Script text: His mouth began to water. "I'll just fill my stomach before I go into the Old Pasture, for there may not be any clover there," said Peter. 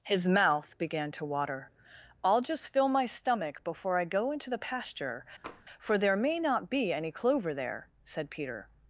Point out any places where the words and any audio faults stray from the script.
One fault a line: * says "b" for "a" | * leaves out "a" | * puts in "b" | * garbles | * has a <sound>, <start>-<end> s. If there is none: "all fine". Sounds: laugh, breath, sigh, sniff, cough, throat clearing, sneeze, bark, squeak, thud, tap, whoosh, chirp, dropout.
* leaves out "Old"
* has a tap, 5.4-5.7 s